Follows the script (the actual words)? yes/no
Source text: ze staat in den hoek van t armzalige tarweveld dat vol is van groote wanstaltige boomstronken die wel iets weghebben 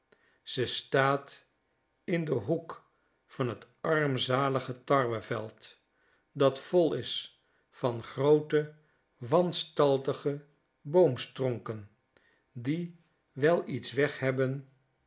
yes